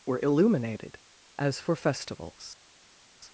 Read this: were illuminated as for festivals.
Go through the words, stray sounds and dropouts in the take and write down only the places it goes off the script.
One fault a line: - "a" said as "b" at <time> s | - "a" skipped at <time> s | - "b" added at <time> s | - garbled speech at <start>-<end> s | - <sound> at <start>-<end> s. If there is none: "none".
none